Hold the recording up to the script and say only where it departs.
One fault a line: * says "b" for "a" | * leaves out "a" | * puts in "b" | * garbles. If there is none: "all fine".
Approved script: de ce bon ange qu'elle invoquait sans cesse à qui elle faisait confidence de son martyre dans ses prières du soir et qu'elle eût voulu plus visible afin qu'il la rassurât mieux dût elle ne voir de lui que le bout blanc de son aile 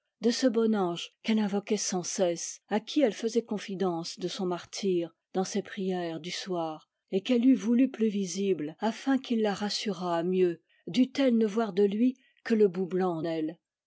* leaves out "de son"